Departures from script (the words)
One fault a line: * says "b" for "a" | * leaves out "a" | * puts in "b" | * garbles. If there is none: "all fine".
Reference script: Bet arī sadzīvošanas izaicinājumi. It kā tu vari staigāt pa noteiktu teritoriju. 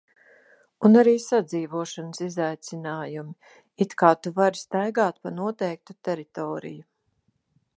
* says "Un" for "Bet"